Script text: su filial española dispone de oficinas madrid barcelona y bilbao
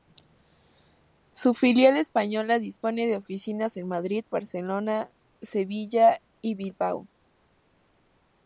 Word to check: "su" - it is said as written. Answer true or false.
true